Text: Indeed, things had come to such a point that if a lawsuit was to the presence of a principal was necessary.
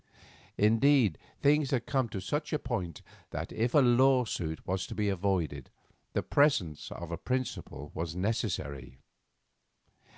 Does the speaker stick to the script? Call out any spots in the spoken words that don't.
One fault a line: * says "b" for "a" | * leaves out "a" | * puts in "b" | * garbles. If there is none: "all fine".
* puts in "be avoided"